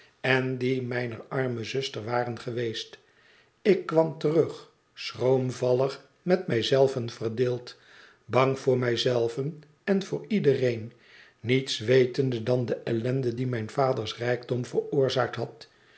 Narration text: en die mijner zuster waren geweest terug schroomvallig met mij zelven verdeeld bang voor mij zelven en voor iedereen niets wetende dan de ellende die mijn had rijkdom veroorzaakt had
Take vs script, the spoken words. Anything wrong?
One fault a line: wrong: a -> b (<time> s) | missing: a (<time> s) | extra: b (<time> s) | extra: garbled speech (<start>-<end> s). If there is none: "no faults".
extra: arme (1.3 s)
extra: ik kwam (3.6 s)
wrong: had -> vaders (13.7 s)